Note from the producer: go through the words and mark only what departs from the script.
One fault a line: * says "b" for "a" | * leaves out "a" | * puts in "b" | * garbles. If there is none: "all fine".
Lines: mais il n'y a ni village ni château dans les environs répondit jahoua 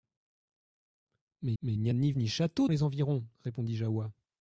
* puts in "mais"
* leaves out "village"
* leaves out "dans"